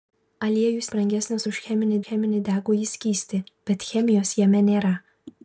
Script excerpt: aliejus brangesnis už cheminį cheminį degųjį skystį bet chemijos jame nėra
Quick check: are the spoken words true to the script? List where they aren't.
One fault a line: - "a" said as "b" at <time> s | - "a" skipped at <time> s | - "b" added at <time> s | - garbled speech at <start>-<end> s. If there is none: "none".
none